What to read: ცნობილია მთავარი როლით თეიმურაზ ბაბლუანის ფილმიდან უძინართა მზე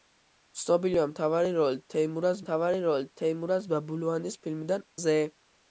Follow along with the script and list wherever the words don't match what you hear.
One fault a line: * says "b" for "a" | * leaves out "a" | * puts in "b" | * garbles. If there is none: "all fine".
* puts in "მთავარი როლით თეიმურაზ"
* leaves out "უძინართა"